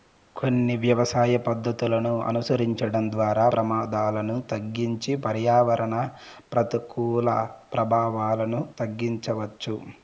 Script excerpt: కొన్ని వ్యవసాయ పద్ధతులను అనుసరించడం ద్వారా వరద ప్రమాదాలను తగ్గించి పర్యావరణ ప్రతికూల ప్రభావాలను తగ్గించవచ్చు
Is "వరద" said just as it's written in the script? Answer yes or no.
no